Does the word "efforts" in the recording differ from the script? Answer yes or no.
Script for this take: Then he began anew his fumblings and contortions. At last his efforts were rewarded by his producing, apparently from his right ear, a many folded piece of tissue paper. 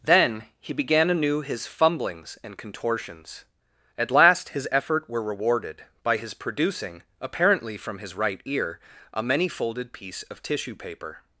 yes